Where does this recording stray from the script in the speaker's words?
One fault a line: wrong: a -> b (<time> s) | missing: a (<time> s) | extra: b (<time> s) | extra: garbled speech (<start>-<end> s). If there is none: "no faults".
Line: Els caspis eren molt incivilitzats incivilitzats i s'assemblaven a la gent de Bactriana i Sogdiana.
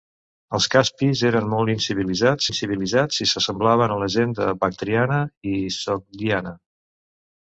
no faults